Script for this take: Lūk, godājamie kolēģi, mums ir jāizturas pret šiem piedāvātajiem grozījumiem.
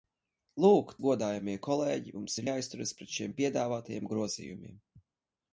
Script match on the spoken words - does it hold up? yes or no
yes